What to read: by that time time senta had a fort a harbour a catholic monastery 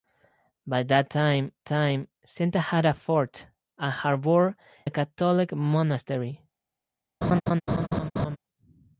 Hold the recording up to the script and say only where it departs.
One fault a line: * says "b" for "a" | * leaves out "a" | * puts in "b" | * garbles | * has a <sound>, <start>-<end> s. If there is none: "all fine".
* has a laugh, 7.2-8.4 s